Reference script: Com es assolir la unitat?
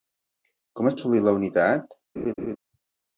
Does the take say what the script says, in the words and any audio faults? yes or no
no